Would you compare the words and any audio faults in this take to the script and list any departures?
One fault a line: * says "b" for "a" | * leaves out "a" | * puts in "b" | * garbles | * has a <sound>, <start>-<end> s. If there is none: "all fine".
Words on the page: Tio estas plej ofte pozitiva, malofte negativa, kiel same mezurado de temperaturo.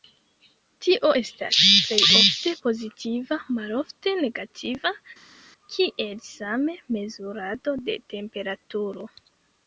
all fine